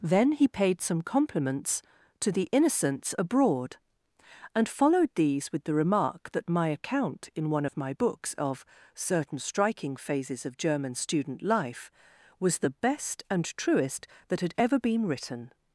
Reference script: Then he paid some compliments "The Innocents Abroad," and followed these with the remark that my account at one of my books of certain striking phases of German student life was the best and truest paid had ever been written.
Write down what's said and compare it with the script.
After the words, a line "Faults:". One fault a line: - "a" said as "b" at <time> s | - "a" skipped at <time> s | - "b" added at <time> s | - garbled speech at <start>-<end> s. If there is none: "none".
Then he paid some compliments to "The Innocents Abroad," and followed these with the remark that my account in one of my books of certain striking phases of German student life was the best and truest that had ever been written.
Faults:
- "to" added at 2.2 s
- "at" said as "in" at 7.3 s
- "paid" said as "that" at 14.3 s